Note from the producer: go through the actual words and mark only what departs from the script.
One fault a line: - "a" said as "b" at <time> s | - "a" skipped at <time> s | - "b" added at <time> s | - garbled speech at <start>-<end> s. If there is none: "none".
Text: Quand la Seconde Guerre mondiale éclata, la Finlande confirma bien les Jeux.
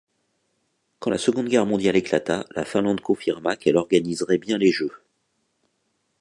- "qu'elle organiserait" added at 3.6 s